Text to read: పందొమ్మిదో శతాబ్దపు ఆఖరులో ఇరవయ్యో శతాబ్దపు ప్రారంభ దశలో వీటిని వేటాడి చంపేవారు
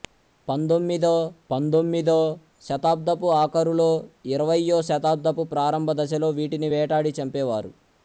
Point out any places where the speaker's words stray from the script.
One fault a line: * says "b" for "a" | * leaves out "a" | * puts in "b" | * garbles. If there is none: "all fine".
* puts in "పందొమ్మిదో"